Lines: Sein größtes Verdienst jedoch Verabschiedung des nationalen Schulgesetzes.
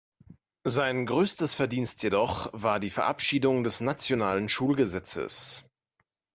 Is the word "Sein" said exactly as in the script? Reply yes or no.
yes